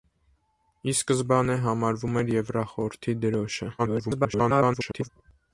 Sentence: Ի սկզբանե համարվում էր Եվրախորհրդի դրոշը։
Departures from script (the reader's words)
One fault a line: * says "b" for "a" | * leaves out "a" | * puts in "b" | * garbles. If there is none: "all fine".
* garbles